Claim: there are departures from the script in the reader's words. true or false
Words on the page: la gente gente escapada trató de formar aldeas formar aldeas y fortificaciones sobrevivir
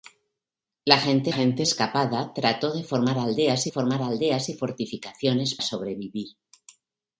false